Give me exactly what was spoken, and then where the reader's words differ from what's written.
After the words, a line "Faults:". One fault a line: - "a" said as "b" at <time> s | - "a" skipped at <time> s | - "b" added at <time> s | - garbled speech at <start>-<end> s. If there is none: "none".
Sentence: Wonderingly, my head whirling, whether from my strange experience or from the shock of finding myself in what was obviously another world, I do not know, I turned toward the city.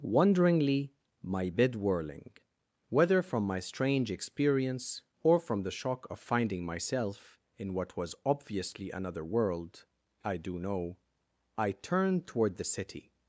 Wonderingly, my bed whirling, whether from my strange experience or from the shock of finding myself in what was obviously another world, I do know, I turned toward the city.
Faults:
- "head" said as "bed" at 1.5 s
- "not" skipped at 10.6 s